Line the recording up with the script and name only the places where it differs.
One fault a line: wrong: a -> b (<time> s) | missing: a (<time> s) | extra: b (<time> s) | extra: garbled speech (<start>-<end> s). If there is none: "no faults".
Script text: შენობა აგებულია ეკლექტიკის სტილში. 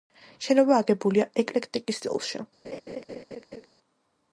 no faults